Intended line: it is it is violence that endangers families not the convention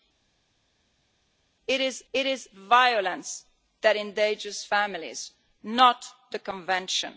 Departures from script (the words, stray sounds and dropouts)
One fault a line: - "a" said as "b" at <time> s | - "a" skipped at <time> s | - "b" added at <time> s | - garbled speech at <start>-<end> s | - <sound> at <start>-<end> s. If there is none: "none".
none